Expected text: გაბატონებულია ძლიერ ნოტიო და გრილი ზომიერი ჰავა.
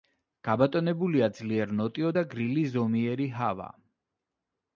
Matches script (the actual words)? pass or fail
pass